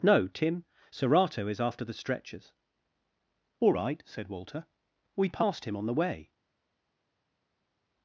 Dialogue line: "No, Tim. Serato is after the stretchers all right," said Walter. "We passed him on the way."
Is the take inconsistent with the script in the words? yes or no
no